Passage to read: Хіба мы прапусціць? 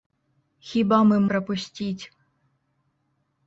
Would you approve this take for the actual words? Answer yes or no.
yes